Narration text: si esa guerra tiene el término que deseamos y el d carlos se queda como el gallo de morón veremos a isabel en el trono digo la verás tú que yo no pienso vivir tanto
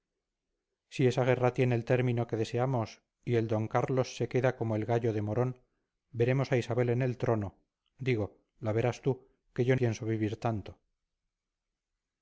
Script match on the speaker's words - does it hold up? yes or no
no